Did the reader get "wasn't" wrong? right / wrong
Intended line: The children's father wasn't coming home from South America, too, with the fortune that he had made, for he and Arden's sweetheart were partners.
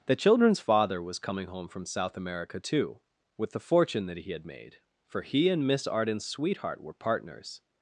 wrong